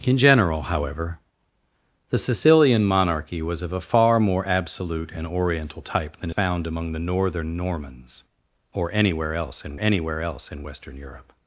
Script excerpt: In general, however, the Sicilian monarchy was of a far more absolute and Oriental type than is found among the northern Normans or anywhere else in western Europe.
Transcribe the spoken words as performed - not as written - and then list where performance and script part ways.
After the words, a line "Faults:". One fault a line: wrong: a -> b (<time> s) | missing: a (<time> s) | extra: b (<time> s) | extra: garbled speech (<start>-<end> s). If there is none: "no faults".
In general, however, the Sicilian monarchy was of a far more absolute and Oriental type than found among the northern Normans or anywhere else in anywhere else in western Europe.
Faults:
missing: is (6.3 s)
extra: anywhere else in (9.8 s)